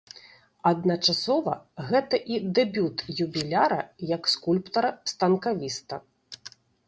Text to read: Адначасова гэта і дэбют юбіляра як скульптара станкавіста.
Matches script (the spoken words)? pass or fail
pass